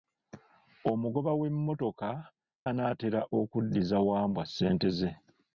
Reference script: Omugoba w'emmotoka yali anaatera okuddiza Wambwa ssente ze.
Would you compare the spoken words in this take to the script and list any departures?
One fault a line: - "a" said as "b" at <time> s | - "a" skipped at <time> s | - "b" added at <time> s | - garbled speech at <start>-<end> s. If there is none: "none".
- "yali" skipped at 2.1 s